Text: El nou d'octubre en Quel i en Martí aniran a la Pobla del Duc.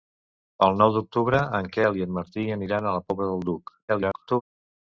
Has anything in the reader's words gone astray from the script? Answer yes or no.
yes